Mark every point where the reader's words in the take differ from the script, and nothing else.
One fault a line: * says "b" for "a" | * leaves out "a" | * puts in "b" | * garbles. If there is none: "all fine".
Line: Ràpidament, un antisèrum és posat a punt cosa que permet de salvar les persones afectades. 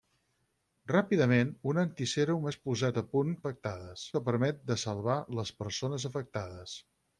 * says "afectades" for "cosa"